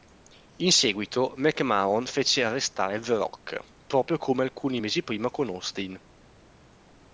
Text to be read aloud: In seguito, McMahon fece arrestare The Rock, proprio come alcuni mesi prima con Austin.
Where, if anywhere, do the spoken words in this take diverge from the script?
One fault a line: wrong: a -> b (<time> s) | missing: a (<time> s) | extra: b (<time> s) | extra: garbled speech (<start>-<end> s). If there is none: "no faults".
no faults